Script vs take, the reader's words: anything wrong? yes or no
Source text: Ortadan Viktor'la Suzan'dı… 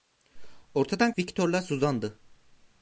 no